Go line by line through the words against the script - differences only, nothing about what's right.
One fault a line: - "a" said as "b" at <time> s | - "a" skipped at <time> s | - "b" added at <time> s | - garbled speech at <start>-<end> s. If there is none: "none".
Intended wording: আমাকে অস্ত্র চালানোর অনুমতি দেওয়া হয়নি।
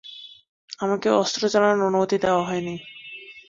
none